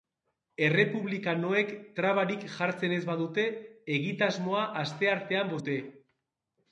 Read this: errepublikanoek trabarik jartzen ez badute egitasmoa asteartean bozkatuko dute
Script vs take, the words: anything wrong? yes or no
yes